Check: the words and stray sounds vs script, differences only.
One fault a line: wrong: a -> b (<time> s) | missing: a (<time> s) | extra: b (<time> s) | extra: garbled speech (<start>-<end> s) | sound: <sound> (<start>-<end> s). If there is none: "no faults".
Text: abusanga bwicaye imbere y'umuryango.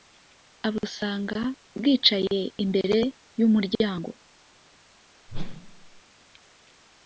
sound: whoosh (5.3-6.0 s)